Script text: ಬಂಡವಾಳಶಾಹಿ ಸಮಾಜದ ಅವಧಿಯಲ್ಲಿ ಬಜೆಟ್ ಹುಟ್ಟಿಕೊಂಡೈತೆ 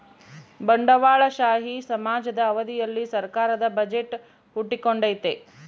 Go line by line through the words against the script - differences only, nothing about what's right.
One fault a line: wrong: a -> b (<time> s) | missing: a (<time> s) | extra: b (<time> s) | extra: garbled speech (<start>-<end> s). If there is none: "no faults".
extra: ಸರ್ಕಾರದ (3.1 s)